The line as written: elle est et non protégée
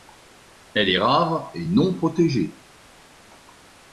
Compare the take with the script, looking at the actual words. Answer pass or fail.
fail